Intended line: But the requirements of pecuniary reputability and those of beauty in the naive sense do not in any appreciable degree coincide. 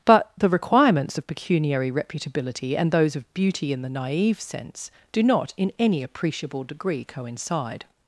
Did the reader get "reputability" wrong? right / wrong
right